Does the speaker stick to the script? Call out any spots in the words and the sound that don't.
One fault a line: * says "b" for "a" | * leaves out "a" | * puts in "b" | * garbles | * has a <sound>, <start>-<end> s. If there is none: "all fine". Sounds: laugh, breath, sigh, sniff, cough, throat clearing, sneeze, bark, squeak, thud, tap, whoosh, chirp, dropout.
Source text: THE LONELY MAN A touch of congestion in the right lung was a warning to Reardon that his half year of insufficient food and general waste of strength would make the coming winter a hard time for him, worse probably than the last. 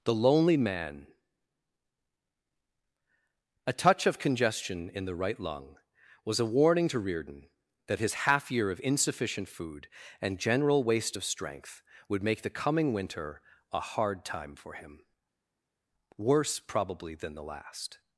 all fine